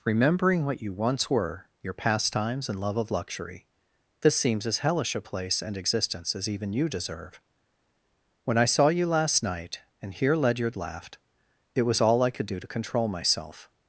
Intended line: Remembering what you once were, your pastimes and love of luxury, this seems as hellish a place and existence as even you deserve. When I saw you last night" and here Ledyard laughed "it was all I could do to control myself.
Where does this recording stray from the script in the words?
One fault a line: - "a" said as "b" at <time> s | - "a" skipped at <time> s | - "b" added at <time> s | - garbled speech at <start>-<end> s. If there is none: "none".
none